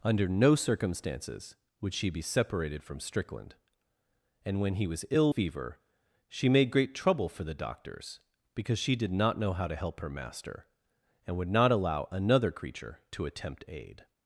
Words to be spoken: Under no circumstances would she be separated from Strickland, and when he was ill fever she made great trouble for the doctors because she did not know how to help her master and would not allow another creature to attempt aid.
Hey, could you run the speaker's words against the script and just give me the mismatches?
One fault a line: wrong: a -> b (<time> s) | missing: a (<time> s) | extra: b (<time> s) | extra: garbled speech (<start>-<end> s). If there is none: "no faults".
no faults